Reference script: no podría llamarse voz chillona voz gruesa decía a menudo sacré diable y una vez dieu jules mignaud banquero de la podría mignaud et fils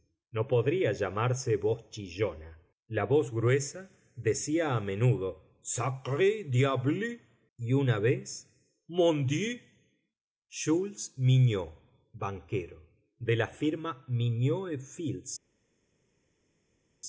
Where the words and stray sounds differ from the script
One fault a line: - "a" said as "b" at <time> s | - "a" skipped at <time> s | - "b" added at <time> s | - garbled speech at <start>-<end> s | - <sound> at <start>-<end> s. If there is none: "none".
- "la" added at 2.9 s
- "mon" added at 8.9 s
- "podría" said as "firma" at 13.5 s